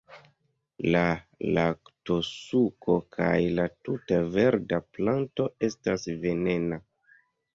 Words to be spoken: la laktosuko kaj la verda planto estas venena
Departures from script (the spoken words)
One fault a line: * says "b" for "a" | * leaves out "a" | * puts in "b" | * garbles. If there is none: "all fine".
* puts in "tuta"